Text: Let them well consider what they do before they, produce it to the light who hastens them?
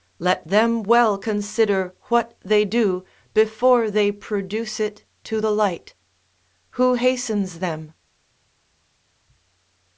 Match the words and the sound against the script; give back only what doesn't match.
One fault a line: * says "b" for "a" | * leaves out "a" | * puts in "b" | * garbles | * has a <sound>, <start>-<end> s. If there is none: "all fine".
all fine